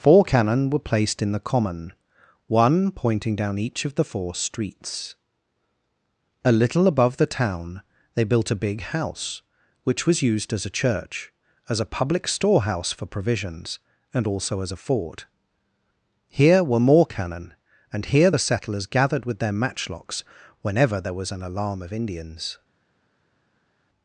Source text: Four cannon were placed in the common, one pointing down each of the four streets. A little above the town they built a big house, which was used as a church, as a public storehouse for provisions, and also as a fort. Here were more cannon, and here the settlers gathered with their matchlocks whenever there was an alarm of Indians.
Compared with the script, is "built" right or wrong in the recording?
right